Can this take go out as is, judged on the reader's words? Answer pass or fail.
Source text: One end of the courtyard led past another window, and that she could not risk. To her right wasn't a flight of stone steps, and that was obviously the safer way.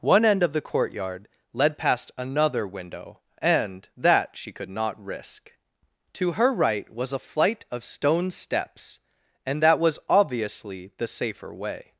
fail